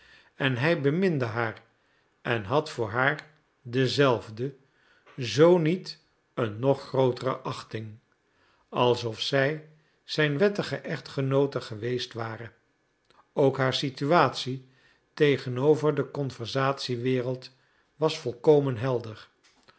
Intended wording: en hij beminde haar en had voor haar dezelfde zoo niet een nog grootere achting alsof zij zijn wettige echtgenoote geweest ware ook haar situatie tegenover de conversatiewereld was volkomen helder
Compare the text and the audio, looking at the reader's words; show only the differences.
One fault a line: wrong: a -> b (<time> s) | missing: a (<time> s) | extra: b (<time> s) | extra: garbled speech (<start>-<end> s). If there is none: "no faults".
no faults